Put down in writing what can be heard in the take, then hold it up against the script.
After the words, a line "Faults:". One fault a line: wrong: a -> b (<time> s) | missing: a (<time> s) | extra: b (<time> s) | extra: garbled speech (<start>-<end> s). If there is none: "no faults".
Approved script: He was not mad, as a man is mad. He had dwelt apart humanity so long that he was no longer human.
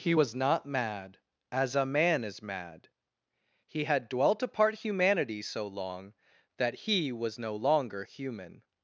He was not mad, as a man is mad. He had dwelt apart humanity so long that he was no longer human.
Faults:
no faults